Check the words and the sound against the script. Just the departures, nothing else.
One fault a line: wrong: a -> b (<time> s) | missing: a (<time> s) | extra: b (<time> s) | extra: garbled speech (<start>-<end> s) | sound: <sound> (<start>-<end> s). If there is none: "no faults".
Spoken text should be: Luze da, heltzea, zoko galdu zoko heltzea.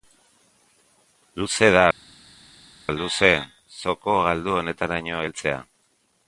wrong: heltzea -> luze (3.0 s)
wrong: zoko -> honetaraino (4.6 s)